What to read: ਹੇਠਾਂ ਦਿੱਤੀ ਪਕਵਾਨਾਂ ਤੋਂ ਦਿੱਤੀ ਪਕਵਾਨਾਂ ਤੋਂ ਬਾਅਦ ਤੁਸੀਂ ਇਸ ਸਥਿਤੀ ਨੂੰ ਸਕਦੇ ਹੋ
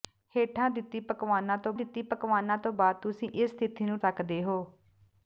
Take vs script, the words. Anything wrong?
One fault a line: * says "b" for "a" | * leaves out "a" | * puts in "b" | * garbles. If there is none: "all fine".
all fine